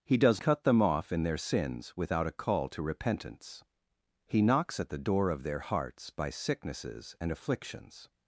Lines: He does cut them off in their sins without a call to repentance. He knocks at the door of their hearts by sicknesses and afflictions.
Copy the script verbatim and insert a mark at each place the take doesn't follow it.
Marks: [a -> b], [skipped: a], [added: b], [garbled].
He does cut them off in their sins without a call to repentance. He knocks at the door of their hearts by sicknesses and afflictions.